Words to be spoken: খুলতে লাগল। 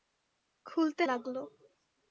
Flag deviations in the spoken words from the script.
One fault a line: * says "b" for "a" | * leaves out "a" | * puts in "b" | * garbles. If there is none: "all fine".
all fine